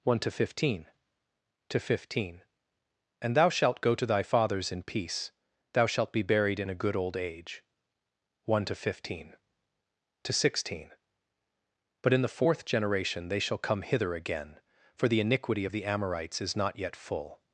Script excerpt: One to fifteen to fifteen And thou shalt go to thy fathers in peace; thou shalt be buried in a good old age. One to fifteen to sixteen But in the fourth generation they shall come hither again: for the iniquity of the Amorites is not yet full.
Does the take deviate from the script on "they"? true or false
false